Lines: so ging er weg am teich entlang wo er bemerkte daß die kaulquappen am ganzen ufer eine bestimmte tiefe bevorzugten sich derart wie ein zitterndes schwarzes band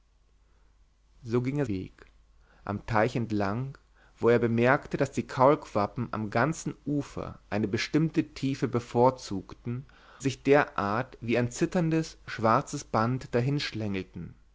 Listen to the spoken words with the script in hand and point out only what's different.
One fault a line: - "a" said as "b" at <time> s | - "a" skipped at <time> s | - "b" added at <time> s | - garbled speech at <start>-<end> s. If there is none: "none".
none